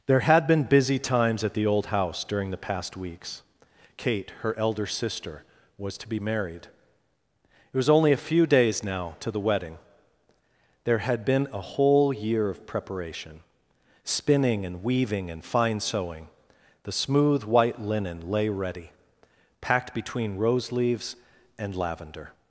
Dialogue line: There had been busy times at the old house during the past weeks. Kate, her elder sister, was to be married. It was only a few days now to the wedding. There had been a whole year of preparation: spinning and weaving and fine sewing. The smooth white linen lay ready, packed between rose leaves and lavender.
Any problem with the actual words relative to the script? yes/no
no